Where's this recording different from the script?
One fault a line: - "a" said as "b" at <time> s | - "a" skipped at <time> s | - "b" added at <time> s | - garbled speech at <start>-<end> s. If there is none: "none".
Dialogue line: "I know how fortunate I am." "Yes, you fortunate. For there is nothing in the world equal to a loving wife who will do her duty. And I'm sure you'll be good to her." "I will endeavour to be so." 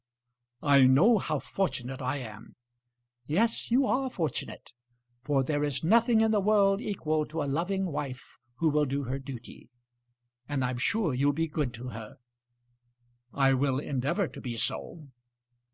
- "are" added at 3.8 s